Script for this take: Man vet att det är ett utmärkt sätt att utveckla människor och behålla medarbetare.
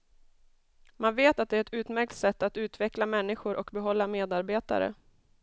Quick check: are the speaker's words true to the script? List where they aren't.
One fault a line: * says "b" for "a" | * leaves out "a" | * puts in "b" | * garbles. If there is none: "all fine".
all fine